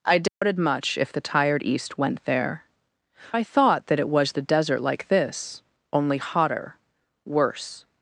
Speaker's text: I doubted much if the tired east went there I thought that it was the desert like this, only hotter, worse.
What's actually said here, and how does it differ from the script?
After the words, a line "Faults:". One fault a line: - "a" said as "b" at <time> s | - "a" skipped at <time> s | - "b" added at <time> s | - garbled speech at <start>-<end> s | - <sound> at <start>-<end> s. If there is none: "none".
I doubted much if the tired east went there I thought that it was the desert like this, only hotter, worse.
Faults:
- dropout at 0.3-0.4 s